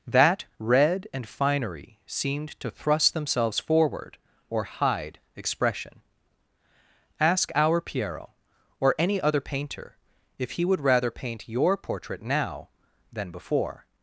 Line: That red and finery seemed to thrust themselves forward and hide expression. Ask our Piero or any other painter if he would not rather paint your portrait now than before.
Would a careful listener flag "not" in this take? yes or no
yes